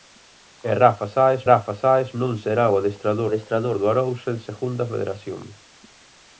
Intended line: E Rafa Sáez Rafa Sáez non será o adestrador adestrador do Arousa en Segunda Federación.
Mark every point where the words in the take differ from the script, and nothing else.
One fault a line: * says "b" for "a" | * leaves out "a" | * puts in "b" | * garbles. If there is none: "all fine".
all fine